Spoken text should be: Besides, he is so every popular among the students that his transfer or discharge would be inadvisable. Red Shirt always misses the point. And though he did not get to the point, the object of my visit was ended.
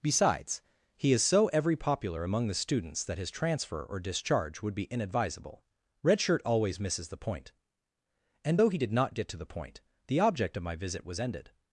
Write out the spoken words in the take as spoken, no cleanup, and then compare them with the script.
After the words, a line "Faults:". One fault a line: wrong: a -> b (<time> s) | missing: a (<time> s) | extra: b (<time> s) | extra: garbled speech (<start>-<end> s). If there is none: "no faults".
Besides, he is so every popular among the students that his transfer or discharge would be inadvisable. Red Shirt always misses the point. And though he did not get to the point, the object of my visit was ended.
Faults:
no faults